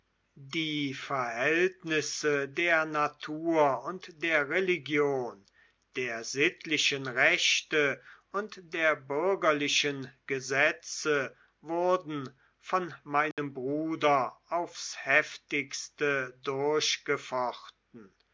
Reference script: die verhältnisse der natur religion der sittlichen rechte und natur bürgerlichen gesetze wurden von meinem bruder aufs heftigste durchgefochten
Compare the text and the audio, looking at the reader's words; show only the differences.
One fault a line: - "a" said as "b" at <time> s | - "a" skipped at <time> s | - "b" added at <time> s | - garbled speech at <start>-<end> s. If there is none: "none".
- "und der" added at 3.8 s
- "natur" said as "der" at 8.7 s